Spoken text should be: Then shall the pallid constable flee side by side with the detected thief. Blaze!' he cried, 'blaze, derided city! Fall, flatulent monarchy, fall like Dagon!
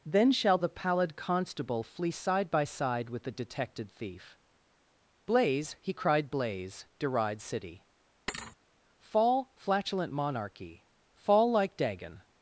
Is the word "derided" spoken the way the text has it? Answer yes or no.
no